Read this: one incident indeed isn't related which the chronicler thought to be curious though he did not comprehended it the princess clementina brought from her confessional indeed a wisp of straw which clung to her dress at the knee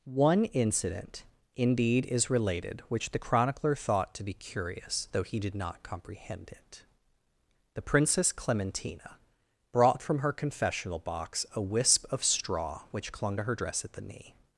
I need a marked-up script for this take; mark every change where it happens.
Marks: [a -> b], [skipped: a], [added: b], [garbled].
one incident indeed [isn't -> is] related which the chronicler thought to be curious though he did not [comprehended -> comprehend] it the princess clementina brought from her confessional [indeed -> box] a wisp of straw which clung to her dress at the knee